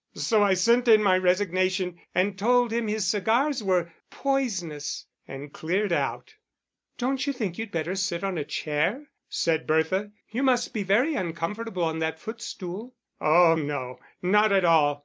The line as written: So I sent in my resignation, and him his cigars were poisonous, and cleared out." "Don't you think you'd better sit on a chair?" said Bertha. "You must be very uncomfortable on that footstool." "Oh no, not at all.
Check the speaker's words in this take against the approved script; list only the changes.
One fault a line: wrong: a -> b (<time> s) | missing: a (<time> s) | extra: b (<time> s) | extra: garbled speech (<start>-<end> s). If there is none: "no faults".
extra: told (2.4 s)